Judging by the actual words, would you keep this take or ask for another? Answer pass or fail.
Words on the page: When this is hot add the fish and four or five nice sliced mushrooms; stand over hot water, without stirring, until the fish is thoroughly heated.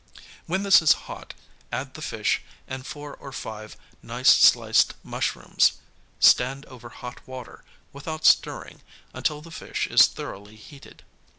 pass